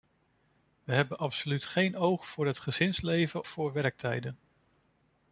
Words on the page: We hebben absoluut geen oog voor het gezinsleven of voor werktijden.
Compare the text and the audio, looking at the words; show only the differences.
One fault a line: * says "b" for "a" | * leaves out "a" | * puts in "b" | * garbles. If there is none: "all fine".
* leaves out "of"